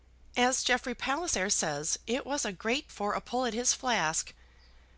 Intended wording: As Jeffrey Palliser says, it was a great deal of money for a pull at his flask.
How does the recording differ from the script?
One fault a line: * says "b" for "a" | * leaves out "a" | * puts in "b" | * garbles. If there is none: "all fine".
* leaves out "deal of money"